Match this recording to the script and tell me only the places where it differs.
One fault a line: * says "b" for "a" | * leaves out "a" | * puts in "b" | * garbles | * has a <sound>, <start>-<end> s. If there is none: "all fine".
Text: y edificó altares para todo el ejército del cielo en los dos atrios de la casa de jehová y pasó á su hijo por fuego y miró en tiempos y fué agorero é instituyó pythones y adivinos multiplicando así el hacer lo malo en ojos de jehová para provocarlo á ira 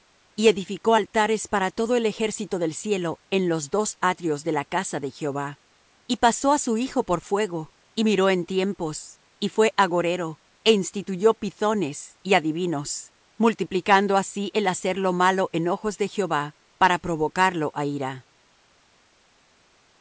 all fine